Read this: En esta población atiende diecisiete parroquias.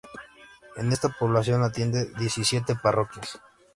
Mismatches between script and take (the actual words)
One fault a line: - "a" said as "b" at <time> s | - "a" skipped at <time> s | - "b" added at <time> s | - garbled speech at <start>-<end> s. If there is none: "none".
none